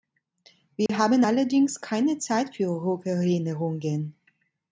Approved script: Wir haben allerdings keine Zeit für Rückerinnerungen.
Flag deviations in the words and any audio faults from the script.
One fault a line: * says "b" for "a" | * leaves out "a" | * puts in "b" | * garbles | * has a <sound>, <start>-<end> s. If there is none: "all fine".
* has a dropout, 0.9-0.9 s